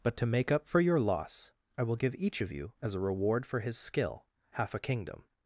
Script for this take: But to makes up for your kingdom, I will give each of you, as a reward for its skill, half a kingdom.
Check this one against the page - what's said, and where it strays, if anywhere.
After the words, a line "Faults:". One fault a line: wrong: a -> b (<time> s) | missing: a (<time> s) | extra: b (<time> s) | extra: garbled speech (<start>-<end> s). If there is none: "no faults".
But to make up for your loss, I will give each of you, as a reward for his skill, half a kingdom.
Faults:
wrong: makes -> make (0.2 s)
wrong: kingdom -> loss (1.0 s)
wrong: its -> his (3.6 s)